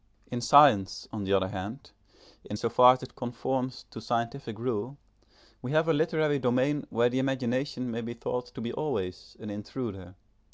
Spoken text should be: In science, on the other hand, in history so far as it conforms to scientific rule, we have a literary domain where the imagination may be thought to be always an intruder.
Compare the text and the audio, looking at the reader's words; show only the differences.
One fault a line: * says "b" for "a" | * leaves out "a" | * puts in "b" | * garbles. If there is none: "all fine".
* leaves out "history"